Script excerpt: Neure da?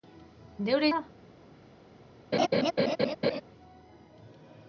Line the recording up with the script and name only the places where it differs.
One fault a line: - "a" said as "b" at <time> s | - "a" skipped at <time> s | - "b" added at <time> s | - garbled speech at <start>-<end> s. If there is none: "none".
none